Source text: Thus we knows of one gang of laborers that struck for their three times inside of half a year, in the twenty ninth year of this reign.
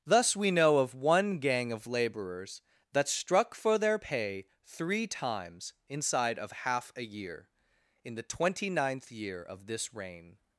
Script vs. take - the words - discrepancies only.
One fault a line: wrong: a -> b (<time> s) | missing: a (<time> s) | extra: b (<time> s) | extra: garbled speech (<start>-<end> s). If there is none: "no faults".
wrong: knows -> know (0.5 s)
extra: pay (4.0 s)